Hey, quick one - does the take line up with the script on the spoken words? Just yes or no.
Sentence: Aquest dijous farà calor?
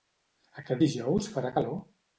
yes